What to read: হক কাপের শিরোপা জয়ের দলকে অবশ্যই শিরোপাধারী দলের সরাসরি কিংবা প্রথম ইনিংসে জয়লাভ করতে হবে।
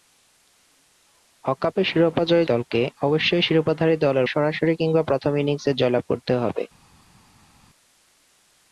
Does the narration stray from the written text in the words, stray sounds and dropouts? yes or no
no